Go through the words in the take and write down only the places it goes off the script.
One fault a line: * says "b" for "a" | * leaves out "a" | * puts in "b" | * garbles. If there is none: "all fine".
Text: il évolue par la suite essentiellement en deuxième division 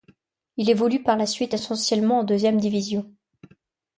all fine